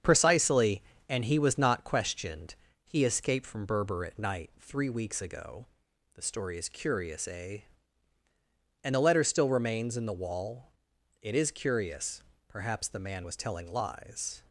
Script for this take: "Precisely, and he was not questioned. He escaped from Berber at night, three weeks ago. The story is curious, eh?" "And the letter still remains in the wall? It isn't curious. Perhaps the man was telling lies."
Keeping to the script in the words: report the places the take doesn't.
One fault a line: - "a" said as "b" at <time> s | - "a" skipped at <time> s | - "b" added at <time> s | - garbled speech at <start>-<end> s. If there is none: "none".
- "isn't" said as "is" at 11.4 s